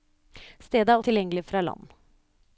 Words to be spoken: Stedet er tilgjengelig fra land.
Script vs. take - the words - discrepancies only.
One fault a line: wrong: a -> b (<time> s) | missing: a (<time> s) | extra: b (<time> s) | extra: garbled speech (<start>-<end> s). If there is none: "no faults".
no faults